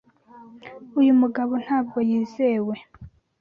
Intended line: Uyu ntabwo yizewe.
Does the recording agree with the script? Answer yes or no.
no